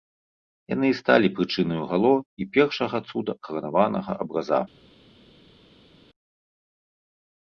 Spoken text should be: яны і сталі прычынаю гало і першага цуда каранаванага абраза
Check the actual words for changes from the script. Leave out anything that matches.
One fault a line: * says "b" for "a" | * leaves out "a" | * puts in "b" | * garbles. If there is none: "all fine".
all fine